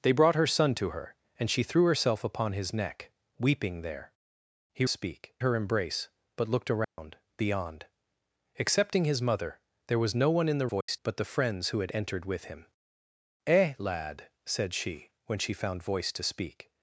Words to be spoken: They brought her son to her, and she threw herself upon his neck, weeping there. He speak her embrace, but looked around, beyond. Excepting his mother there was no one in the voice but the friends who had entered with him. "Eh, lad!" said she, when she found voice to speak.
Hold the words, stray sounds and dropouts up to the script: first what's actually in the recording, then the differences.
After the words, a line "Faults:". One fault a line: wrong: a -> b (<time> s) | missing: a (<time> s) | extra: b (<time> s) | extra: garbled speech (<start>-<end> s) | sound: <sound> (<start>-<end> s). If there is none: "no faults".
They brought her son to her, and she threw herself upon his neck, weeping there. He speak her embrace, but looked around, beyond. Excepting his mother there was no one in the voice but the friends who had entered with him. "Eh, lad!" said she, when she found voice to speak.
Faults:
sound: dropout (6.8-7.0 s)
sound: dropout (10.8-10.9 s)